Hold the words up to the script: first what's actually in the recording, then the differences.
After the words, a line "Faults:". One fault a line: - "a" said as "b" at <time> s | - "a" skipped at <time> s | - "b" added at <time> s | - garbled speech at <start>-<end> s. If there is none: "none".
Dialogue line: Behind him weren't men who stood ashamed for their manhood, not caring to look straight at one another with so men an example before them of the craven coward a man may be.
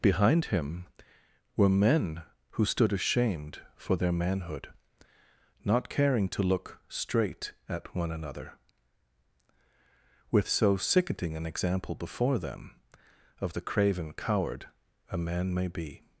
Behind him were men who stood ashamed for their manhood, not caring to look straight at one another with so sickening an example before them of the craven coward a man may be.
Faults:
- "weren't" said as "were" at 1.6 s
- "men" said as "sickening" at 10.8 s